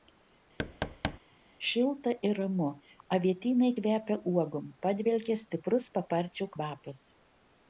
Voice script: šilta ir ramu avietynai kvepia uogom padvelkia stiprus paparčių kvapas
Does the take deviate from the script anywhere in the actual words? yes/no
no